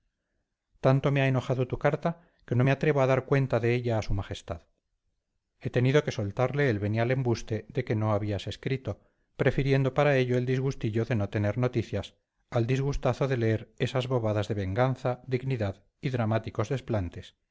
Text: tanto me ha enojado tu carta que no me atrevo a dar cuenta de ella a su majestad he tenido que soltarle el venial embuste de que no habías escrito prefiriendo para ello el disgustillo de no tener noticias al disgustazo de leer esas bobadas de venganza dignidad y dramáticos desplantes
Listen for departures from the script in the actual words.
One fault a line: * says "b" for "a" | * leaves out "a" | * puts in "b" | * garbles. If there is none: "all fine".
all fine